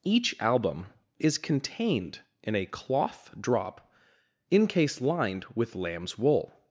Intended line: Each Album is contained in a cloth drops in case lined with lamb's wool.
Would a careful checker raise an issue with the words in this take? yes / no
yes